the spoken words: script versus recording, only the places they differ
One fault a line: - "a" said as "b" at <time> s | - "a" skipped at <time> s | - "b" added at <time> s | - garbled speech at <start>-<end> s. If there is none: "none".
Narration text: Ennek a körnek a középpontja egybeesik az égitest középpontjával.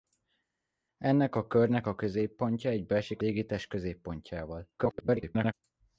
- "az" skipped at 3.2 s
- garbled speech at 4.8-5.5 s